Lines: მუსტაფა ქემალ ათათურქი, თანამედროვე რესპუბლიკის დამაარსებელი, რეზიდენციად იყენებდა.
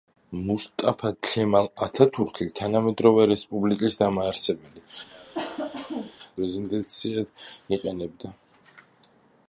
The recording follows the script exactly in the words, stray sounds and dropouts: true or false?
false